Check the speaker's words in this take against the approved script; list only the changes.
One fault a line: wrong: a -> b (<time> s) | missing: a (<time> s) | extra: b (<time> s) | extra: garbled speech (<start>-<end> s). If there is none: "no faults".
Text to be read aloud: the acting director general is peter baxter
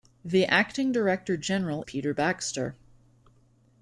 missing: is (1.8 s)